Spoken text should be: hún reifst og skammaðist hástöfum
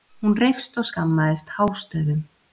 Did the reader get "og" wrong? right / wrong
right